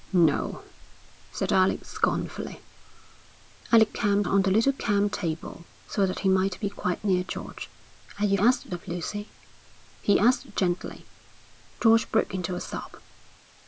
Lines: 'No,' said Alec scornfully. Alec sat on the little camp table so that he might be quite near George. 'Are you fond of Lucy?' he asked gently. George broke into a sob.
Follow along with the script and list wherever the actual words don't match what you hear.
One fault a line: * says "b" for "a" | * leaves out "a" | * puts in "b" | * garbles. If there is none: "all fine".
* says "camp" for "sat"
* says "asked" for "fond"